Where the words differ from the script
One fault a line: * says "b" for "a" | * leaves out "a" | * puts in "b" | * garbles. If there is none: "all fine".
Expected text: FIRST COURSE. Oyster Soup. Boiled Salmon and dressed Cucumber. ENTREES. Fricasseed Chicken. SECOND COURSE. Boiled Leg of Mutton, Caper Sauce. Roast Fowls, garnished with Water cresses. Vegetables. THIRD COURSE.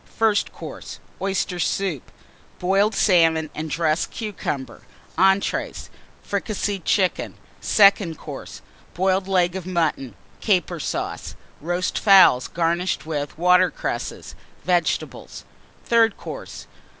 all fine